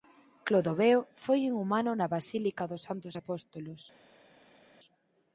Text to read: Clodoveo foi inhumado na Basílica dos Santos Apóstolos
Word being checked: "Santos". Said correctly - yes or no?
yes